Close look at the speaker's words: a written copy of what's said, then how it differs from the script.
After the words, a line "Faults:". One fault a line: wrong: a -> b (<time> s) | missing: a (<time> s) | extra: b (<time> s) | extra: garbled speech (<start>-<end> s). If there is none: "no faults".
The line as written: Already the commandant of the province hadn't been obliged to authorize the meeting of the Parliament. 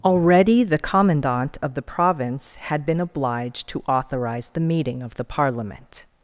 Already the commandant of the province had been obliged to authorize the meeting of the Parliament.
Faults:
wrong: hadn't -> had (2.5 s)